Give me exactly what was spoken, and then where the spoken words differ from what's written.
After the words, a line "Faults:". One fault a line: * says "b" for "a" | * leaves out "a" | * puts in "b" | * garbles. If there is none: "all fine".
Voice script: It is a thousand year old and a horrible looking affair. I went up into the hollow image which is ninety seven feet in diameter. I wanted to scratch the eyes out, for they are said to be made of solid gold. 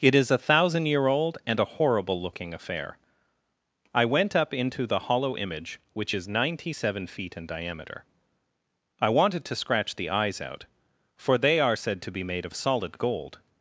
It is a thousand year old and a horrible looking affair. I went up into the hollow image which is ninety seven feet in diameter. I wanted to scratch the eyes out, for they are said to be made of solid gold.
Faults:
all fine